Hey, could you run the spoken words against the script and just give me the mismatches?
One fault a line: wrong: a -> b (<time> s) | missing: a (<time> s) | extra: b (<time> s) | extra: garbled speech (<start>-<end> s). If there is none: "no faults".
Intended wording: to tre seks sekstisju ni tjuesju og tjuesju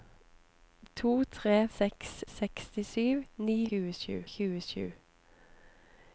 no faults